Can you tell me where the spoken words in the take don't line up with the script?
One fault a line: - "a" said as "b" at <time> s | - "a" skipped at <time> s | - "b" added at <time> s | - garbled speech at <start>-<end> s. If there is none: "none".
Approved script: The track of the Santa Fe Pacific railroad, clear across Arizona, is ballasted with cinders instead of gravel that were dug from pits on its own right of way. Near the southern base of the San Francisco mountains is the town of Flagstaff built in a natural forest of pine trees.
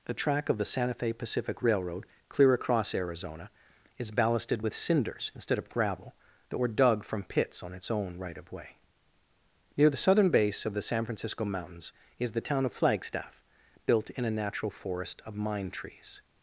- "pine" said as "mine" at 15.3 s